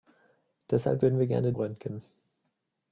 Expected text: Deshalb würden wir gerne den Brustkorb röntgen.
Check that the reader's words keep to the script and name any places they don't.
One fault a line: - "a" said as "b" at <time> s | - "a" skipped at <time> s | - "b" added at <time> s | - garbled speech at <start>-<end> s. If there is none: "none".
- "den Brustkorb" skipped at 1.5 s